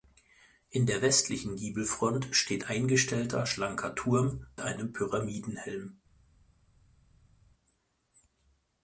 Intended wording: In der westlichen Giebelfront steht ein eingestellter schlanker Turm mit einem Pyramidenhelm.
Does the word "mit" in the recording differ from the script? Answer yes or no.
yes